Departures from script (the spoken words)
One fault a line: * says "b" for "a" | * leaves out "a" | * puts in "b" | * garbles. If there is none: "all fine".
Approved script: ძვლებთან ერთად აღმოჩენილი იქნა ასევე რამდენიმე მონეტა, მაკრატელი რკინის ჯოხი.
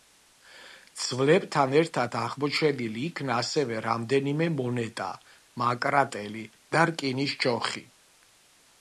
* puts in "და"